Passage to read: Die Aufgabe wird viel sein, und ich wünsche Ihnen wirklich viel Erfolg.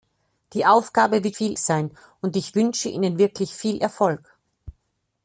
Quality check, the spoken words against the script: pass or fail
pass